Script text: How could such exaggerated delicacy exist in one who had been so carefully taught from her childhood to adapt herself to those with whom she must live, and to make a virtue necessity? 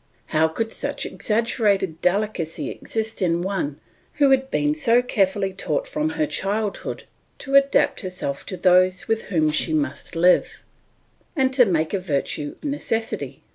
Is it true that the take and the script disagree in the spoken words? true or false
false